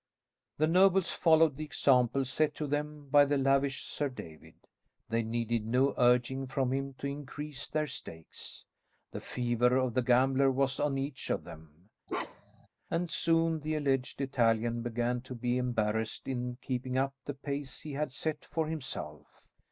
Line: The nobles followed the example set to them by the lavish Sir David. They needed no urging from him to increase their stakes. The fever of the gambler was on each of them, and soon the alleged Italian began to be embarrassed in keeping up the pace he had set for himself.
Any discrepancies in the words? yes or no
no